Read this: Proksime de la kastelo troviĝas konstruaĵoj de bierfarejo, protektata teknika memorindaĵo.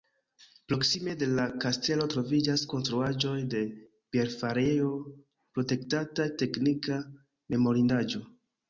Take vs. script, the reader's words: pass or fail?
pass